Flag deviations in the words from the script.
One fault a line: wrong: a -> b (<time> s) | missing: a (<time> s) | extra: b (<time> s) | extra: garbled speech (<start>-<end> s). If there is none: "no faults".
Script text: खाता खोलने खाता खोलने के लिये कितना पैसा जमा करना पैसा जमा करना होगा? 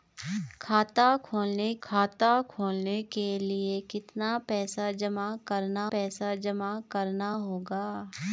no faults